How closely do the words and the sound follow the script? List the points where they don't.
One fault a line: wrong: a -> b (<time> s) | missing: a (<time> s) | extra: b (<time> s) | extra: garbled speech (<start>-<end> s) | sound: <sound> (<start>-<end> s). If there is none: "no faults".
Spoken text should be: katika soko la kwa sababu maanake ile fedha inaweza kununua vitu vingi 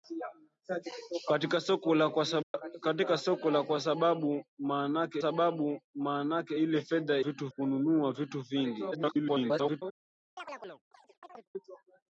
sound: dropout (2.4-2.5 s)
extra: sababu maanake (5.2 s)
wrong: inaweza -> vitu (7.2 s)
extra: garbled speech (8.9-9.8 s)
sound: chirp (10.4-11.5 s)